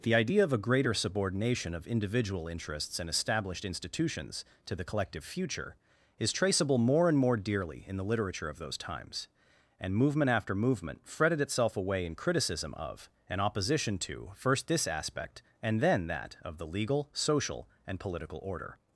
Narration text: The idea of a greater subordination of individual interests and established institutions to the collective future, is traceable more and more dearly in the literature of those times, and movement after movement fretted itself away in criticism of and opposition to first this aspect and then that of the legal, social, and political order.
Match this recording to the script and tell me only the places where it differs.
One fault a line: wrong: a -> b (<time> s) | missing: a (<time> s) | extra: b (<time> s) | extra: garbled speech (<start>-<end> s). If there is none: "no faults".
no faults